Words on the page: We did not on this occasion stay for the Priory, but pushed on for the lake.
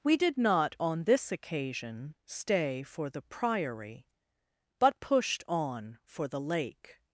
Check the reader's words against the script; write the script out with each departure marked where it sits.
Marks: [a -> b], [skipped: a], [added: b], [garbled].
We did not on this occasion stay for the Priory, but pushed on for the lake.